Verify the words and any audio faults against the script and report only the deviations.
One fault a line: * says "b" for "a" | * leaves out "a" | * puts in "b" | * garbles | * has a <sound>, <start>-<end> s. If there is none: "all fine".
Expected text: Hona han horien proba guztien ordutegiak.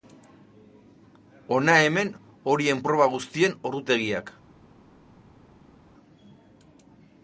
* says "hemen" for "han"